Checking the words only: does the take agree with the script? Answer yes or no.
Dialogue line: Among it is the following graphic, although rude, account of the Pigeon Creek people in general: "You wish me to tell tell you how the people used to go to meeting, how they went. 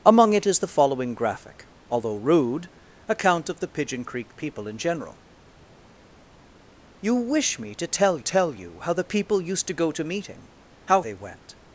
yes